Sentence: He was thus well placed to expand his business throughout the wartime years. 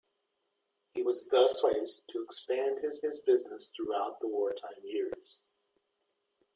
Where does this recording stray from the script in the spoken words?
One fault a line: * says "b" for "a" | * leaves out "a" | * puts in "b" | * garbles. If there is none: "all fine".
* leaves out "well"
* puts in "his"